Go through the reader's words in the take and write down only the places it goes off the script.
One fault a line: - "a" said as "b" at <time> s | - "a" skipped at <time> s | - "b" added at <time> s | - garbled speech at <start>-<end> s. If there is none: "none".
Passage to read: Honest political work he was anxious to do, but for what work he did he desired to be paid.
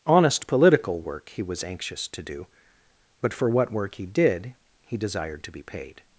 none